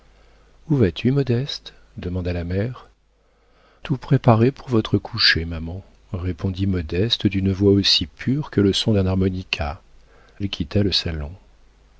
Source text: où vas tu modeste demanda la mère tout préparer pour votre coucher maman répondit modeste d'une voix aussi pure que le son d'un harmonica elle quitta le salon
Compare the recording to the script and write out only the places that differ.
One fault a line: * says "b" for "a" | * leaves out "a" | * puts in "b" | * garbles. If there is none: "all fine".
all fine